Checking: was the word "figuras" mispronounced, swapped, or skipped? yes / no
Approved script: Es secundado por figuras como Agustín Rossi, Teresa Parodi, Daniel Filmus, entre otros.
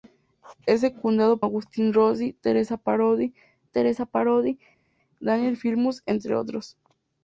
yes